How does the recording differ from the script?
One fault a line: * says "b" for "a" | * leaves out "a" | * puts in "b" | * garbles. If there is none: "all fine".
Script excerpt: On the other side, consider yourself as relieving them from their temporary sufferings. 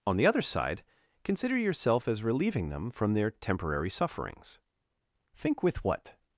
* puts in "Think with what"